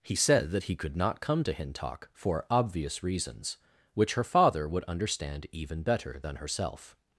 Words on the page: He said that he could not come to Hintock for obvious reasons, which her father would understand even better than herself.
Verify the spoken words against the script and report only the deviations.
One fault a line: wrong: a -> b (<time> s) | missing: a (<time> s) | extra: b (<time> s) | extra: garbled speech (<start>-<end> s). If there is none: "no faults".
no faults